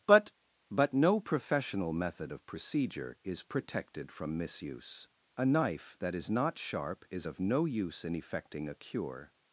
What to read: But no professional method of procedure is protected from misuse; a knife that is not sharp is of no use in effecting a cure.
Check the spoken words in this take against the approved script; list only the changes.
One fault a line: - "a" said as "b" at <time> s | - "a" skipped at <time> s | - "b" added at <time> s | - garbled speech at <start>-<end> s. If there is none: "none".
- "but" added at 0.7 s